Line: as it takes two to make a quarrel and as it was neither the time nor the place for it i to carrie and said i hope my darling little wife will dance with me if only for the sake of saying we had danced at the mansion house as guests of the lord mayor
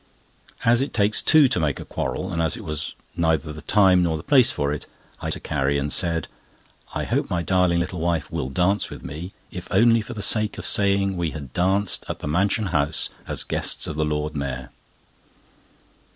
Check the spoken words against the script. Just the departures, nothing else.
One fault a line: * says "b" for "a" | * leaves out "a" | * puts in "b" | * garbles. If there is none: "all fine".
all fine